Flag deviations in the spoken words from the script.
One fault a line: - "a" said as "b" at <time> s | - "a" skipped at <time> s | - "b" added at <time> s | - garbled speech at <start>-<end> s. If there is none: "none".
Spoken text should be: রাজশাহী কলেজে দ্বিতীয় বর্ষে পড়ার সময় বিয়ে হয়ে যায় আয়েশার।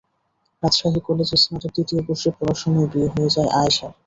- "স্নাতক" added at 1.4 s